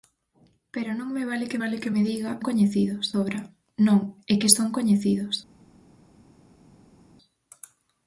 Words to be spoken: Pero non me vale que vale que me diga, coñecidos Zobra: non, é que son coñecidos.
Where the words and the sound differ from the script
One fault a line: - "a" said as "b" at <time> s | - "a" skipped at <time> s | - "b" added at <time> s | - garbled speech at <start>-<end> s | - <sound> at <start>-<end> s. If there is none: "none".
none